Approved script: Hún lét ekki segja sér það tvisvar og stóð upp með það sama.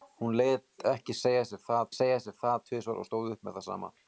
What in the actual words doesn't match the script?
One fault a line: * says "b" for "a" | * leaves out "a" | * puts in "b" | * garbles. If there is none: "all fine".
* puts in "segja sér það"